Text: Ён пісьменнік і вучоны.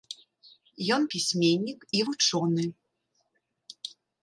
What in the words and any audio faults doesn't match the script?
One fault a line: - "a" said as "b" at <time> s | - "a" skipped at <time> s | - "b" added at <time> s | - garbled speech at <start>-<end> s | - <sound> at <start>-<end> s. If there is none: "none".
none